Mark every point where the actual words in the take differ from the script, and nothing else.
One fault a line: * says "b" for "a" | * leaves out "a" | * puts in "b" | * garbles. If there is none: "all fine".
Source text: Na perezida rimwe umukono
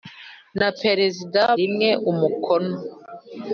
all fine